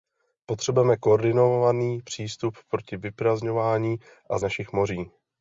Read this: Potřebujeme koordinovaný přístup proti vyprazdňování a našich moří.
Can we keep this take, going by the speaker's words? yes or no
yes